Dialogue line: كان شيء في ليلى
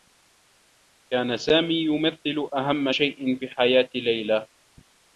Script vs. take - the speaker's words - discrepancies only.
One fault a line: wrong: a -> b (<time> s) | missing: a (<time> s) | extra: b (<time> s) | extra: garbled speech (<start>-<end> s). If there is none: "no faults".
extra: سامي يمثّل أهمّ (1.4 s)
extra: حياة (3.5 s)